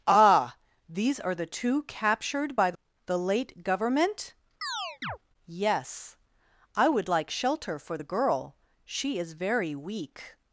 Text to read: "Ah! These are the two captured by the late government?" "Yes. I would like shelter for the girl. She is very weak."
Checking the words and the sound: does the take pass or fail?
fail